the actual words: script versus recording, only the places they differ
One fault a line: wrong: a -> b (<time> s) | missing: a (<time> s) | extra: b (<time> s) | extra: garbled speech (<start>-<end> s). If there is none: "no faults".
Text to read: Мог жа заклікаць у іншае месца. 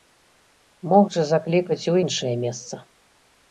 no faults